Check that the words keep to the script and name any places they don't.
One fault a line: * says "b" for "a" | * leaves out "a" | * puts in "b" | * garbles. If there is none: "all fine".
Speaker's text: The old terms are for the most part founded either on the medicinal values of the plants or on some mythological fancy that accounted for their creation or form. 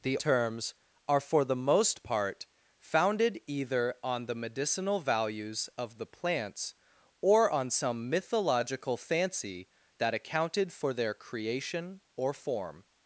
* leaves out "old"